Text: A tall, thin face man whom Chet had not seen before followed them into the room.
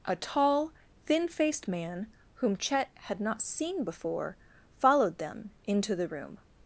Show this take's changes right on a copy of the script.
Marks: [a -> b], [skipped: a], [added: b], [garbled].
A tall, thin [face -> faced] man whom Chet had not seen before followed them into the room.